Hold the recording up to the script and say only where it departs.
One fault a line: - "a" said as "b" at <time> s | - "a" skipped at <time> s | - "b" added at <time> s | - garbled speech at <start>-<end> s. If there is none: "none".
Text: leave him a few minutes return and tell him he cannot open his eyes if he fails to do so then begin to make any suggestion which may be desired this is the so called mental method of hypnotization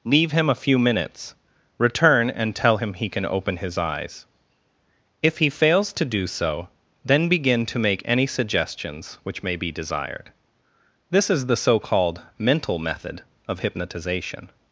- "cannot" said as "can" at 3.1 s
- "suggestion" said as "suggestions" at 8.3 s